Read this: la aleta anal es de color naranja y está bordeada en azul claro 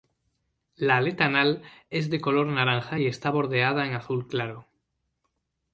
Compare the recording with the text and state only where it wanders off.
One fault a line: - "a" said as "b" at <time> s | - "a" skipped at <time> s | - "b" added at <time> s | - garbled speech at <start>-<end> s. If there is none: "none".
none